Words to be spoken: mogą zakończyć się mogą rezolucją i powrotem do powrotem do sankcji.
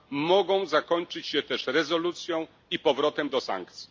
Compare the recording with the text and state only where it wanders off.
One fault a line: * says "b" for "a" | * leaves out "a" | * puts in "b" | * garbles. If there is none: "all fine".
* says "też" for "mogą"
* leaves out "powrotem do"